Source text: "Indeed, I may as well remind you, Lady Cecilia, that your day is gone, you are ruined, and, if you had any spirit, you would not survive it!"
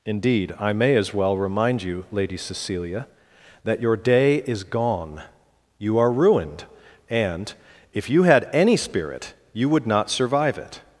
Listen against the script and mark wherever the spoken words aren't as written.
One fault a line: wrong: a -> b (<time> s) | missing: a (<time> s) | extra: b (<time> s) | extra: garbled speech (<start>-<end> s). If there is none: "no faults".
no faults